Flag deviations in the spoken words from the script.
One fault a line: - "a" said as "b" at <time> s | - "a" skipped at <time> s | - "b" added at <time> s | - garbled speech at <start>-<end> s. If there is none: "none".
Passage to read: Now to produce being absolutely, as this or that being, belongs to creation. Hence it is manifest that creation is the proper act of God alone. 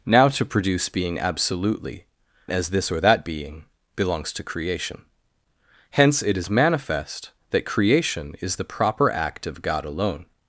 none